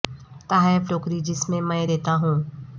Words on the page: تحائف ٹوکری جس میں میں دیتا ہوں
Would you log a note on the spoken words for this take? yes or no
no